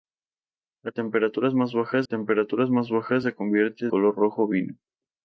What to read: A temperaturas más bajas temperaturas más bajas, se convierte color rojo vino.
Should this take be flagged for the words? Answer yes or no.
no